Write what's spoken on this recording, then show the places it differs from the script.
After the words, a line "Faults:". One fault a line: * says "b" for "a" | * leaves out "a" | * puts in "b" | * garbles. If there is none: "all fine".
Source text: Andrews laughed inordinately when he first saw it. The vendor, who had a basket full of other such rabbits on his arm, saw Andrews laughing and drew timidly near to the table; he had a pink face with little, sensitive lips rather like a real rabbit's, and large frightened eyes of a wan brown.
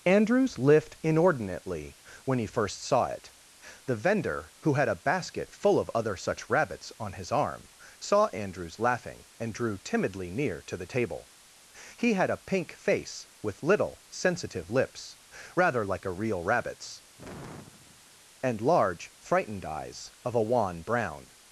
Andrews lift inordinately when he first saw it. The vendor, who had a basket full of other such rabbits on his arm, saw Andrews laughing and drew timidly near to the table; he had a pink face with little, sensitive lips rather like a real rabbit's, and large frightened eyes of a wan brown.
Faults:
* says "lift" for "laughed"